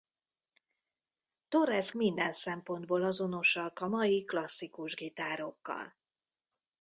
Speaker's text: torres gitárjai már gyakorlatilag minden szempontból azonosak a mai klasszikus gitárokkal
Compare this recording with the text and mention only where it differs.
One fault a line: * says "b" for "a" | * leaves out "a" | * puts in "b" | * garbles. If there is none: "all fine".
* leaves out "gitárjai már gyakorlatilag"